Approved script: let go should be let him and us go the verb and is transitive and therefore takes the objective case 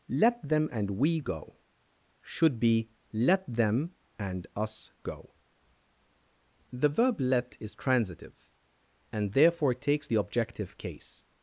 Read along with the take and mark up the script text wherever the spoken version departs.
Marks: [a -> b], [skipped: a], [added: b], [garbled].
let [added: them and we] go should be let [him -> them] and us go the verb [and -> let] is transitive and therefore takes the objective case